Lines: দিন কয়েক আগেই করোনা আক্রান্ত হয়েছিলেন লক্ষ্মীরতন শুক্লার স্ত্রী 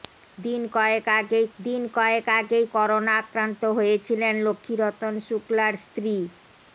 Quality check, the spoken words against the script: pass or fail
fail